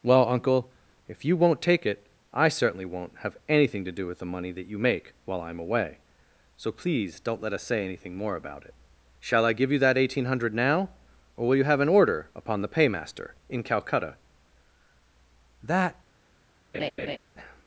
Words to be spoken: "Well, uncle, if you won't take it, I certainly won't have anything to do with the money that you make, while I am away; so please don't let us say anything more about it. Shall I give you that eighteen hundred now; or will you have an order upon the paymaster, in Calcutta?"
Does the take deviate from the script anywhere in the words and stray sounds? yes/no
yes